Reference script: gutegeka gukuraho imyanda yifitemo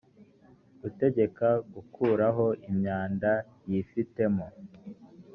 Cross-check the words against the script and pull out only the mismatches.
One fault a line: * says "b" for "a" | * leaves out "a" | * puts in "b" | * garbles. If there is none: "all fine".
all fine